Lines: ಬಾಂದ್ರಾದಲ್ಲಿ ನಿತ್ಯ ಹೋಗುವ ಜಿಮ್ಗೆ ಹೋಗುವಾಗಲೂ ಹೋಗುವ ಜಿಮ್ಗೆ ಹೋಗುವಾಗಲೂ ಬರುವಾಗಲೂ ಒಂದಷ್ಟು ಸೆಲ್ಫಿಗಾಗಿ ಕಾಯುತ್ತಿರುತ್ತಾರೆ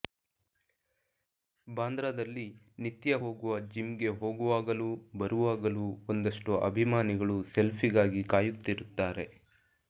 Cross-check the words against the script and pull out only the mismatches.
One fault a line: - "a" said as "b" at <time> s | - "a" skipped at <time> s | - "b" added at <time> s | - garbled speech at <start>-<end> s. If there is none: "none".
- "ಹೋಗುವ ಜಿಮ್ಗೆ ಹೋಗುವಾಗಲೂ" skipped at 4.9 s
- "ಅಭಿಮಾನಿಗಳು" added at 6.7 s